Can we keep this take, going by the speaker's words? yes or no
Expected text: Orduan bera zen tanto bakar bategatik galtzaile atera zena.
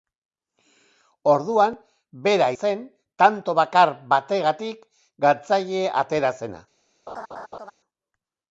yes